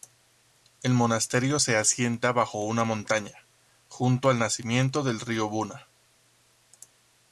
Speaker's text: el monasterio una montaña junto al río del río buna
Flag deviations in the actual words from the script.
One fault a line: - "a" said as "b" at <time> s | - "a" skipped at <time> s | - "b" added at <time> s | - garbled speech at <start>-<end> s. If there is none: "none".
- "se asienta bajo" added at 1.6 s
- "río" said as "nacimiento" at 4.4 s